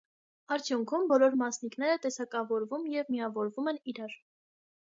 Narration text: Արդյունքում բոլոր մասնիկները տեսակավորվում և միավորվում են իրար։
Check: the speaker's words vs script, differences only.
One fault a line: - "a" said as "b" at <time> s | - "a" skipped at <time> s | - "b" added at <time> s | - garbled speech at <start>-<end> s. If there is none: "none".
none